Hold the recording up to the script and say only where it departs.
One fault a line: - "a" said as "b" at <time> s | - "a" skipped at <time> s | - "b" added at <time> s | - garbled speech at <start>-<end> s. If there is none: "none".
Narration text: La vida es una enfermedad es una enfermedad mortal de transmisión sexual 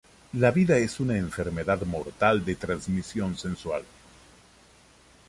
- "es una enfermedad" skipped at 1.8 s